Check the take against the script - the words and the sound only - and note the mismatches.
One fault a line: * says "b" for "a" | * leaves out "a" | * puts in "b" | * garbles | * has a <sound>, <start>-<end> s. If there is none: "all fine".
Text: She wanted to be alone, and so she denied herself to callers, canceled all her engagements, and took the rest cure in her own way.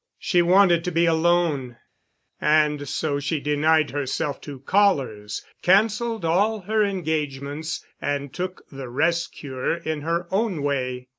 all fine